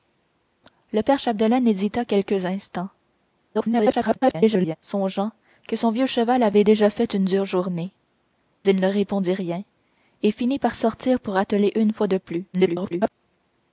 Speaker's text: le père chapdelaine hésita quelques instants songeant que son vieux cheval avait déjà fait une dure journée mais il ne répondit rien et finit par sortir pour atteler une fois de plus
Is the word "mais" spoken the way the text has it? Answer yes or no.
no